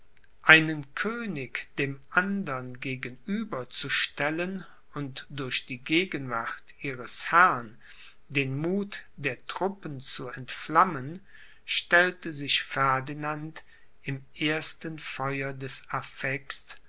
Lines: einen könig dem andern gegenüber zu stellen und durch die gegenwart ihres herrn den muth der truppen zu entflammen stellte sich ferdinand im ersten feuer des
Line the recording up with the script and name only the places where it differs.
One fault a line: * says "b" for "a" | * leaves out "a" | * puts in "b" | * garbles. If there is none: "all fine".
all fine